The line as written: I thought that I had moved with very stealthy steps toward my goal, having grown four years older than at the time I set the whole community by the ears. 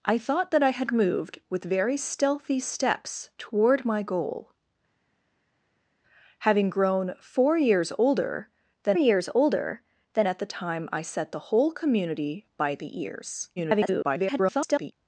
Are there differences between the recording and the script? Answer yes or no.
yes